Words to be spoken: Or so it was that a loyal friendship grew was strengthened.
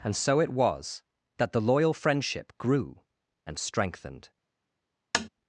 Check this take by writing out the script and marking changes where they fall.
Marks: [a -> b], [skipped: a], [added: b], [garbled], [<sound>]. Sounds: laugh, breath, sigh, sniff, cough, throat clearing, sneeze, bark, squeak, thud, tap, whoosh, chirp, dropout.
[Or -> And] so it was that [a -> the] loyal friendship grew [was -> and] strengthened. [tap]